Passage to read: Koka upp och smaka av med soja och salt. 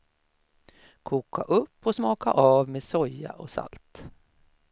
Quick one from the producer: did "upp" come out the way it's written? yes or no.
yes